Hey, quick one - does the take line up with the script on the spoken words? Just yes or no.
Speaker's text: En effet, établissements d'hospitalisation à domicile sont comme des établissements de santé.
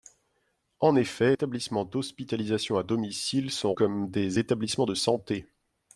yes